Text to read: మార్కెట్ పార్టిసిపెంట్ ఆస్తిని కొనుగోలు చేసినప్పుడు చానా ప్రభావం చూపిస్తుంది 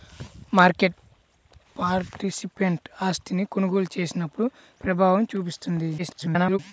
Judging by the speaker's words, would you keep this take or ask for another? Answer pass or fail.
fail